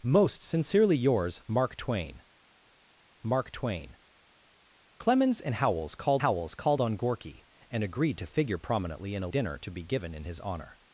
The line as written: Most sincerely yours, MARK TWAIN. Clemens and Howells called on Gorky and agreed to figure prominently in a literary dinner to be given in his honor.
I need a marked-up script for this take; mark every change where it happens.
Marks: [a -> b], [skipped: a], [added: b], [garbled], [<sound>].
Most sincerely yours, MARK TWAIN. [added: MARK TWAIN] Clemens and Howells called [added: Howells called] on Gorky and agreed to figure prominently in a [skipped: literary] dinner to be given in his honor.